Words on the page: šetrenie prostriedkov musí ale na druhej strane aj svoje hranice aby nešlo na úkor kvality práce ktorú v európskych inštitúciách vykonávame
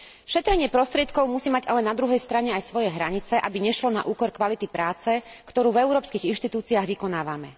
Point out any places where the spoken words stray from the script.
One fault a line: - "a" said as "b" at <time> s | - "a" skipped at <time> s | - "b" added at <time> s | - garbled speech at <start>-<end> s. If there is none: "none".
- "mať" added at 1.5 s